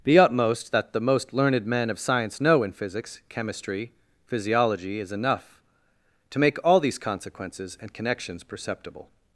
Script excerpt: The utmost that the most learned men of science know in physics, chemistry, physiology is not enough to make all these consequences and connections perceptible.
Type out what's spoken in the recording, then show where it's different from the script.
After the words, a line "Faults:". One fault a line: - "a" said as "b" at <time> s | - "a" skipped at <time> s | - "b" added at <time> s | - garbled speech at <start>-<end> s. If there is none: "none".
The utmost that the most learned men of science know in physics, chemistry, physiology is enough to make all these consequences and connections perceptible.
Faults:
- "not" skipped at 5.1 s